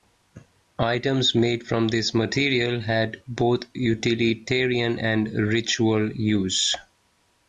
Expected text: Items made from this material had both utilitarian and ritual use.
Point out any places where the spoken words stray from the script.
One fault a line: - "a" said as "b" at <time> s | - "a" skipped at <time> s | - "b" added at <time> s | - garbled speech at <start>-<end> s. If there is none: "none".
none